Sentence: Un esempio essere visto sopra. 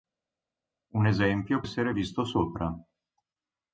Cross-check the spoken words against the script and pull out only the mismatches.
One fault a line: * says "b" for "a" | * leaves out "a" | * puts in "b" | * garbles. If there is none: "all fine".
all fine